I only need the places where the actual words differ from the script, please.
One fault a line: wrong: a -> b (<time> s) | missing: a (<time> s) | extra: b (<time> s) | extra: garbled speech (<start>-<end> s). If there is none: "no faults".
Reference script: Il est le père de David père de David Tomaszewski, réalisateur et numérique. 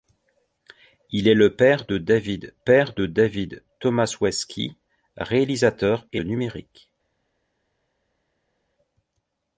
no faults